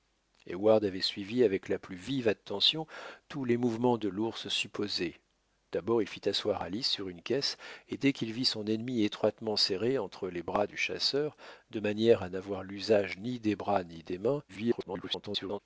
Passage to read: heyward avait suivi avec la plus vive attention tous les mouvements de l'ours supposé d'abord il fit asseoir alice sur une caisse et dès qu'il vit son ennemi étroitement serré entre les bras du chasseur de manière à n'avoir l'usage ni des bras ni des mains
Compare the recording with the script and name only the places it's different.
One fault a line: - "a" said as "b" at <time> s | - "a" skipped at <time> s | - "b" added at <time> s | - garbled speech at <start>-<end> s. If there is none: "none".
- garbled speech at 14.5-15.6 s